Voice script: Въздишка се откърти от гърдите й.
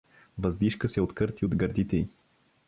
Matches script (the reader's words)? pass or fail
pass